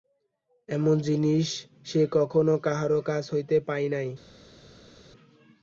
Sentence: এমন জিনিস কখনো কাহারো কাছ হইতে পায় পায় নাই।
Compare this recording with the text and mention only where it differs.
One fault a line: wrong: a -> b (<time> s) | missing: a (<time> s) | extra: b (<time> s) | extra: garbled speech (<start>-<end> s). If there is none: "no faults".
extra: সে (1.9 s)
missing: পায় (3.9 s)